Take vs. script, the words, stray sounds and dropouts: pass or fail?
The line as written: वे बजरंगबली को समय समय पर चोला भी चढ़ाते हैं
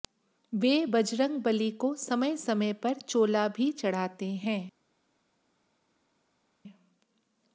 pass